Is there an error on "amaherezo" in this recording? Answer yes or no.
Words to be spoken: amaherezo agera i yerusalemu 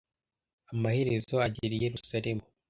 no